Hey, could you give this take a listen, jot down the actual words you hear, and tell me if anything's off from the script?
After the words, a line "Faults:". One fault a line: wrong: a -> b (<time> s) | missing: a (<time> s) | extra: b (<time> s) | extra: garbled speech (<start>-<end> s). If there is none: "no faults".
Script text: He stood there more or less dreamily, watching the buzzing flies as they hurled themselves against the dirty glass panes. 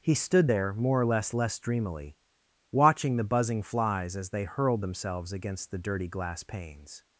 He stood there more or less less dreamily, watching the buzzing flies as they hurled themselves against the dirty glass panes.
Faults:
extra: less (1.3 s)